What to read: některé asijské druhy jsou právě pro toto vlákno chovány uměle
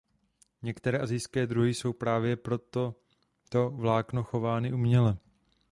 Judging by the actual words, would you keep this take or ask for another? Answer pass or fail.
pass